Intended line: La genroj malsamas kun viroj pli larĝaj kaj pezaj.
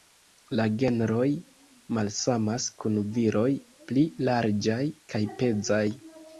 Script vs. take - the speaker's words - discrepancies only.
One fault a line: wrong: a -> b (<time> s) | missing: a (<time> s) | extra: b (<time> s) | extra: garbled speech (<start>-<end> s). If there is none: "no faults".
no faults